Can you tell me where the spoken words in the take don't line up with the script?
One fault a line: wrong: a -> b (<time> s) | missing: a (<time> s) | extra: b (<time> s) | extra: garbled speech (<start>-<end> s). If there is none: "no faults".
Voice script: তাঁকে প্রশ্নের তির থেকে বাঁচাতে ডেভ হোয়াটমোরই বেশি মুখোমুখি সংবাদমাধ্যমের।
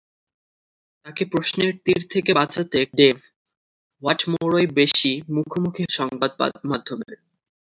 no faults